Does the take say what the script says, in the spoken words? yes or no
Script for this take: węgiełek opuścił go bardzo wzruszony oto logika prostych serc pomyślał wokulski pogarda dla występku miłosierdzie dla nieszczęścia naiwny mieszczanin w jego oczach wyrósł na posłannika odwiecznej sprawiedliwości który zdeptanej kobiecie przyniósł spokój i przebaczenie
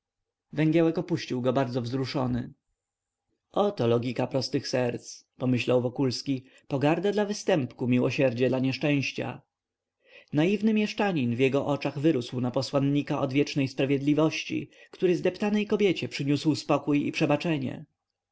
yes